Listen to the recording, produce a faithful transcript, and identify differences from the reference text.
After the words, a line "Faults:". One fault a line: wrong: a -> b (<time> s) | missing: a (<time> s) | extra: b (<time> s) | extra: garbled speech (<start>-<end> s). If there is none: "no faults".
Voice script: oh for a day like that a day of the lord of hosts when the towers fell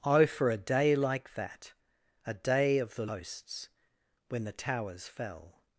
oh for a day like that a day of the hosts when the towers fell
Faults:
missing: lord of (3.0 s)